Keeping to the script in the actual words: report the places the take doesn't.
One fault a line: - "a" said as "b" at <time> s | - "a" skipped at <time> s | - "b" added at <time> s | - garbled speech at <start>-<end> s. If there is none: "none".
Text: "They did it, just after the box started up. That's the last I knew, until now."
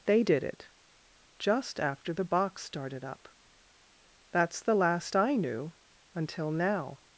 none